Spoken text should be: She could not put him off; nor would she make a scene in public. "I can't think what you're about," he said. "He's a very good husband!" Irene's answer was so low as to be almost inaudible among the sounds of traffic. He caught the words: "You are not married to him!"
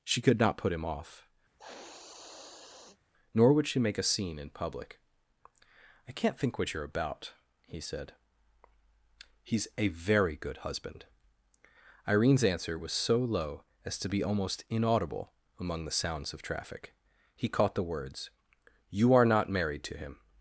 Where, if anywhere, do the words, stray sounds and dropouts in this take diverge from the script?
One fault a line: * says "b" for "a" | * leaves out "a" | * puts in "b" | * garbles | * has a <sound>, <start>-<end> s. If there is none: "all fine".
* has a sniff, 1.6-3.0 s